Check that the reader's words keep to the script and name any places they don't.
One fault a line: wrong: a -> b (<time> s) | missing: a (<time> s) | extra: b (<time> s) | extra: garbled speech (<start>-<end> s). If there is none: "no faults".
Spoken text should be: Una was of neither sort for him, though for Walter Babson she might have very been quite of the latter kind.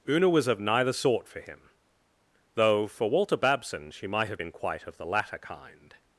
missing: very (4.4 s)